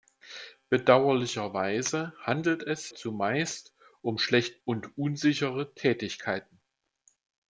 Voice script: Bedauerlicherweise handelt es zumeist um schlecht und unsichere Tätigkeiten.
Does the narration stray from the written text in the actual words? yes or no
no